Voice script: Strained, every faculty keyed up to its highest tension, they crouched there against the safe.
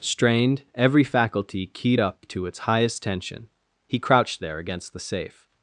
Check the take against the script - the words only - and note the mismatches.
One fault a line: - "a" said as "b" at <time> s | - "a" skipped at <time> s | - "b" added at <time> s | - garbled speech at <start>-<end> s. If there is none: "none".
- "they" said as "he" at 3.8 s